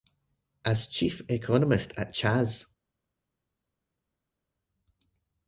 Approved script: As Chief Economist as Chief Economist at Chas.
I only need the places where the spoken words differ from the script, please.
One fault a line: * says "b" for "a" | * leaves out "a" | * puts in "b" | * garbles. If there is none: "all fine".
* leaves out "as Chief Economist"